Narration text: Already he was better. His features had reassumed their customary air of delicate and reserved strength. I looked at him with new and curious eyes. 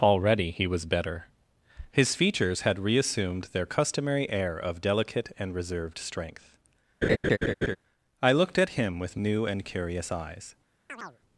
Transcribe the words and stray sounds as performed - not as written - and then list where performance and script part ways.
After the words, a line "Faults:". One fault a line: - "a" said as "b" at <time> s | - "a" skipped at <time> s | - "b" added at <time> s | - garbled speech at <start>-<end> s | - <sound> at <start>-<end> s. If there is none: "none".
Already he was better. His features had reassumed their customary air of delicate and reserved strength. I looked at him with new and curious eyes.
Faults:
- laugh at 7.0-7.8 s
- chirp at 10.9-11.2 s